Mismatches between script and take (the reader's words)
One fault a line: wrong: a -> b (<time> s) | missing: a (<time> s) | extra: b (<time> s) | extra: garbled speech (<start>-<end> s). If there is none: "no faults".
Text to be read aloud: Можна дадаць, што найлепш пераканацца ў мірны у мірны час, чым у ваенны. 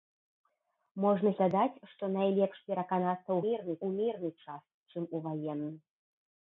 no faults